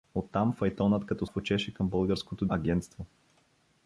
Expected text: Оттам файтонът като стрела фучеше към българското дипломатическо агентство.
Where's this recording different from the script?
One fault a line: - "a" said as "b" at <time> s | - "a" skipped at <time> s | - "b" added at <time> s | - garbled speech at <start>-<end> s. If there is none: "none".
- "стрела" skipped at 1.2 s
- "дипломатическо" skipped at 2.5 s